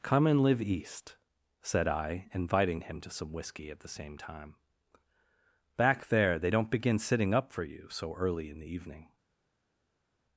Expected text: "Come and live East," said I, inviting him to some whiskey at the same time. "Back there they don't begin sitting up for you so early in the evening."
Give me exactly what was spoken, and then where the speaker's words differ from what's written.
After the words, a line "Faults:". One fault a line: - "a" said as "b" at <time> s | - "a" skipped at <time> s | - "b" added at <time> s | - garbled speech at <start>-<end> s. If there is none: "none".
"Come and live East," said I, inviting him to some whiskey at the same time. "Back there they don't begin sitting up for you so early in the evening."
Faults:
none